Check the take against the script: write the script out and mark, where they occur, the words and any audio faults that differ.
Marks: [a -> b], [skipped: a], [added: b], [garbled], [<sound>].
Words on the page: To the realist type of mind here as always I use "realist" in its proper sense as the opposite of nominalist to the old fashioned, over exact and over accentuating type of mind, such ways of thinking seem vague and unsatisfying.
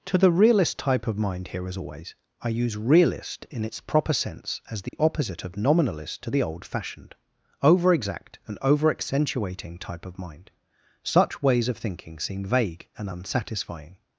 To the realist type of mind here as always I use "realist" in its proper sense as the [dropout] opposite of nominalist to the old fashioned, over exact and over accentuating type of mind, such ways of thinking seem vague and unsatisfying.